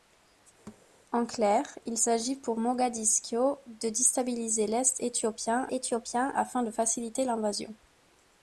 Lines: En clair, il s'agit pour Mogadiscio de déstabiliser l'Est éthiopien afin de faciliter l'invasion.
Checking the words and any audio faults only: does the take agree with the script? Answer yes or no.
no